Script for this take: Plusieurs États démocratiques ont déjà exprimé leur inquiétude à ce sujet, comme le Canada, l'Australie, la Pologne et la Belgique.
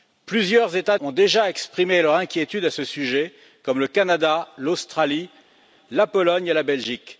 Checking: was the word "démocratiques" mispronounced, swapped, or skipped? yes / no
yes